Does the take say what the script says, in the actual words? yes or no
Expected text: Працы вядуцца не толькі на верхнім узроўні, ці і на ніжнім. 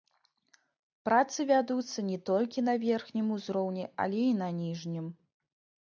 no